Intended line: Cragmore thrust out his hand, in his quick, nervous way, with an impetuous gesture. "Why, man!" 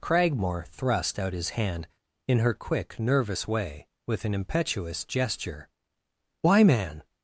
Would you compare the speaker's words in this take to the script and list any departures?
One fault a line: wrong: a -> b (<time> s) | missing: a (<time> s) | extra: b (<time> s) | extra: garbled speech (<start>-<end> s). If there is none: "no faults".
wrong: his -> her (2.4 s)